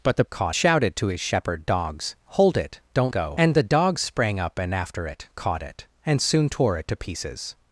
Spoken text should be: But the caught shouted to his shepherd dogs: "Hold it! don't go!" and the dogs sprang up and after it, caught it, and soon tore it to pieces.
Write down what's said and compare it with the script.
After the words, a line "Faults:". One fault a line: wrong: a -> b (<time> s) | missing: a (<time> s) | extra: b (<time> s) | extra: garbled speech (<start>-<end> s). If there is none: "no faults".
But the caught shouted to his shepherd dogs: "Hold it! don't go!" and the dogs sprang up and after it, caught it, and soon tore it to pieces.
Faults:
no faults